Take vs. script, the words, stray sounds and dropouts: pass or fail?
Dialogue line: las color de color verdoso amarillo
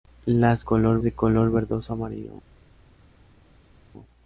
pass